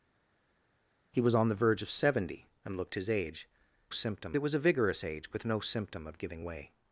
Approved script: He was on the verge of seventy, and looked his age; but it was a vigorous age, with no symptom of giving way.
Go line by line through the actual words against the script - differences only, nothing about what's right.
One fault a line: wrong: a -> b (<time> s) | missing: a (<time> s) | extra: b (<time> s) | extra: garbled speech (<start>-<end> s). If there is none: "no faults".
wrong: but -> symptom (3.9 s)